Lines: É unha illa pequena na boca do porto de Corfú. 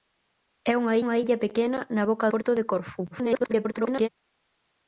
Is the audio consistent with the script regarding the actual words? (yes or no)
no